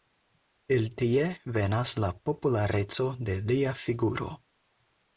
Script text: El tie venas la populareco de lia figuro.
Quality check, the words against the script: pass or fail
pass